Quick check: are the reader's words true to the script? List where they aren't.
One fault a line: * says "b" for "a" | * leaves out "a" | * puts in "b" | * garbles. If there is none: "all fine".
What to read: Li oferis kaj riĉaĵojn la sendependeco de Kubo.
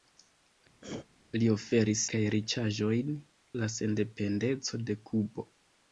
all fine